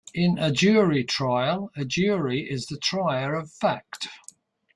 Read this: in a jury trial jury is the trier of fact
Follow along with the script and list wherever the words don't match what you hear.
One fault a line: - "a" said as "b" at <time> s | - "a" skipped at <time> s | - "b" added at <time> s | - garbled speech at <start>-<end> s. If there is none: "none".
- "a" added at 1.8 s